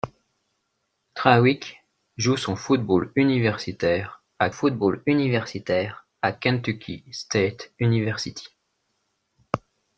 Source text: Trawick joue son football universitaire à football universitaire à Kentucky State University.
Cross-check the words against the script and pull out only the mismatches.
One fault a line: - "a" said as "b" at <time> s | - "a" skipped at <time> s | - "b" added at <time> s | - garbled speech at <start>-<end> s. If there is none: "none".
none